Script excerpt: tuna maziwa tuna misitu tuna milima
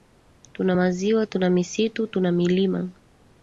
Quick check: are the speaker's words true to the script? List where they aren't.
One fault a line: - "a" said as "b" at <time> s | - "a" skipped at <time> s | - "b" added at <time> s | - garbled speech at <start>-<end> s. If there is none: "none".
none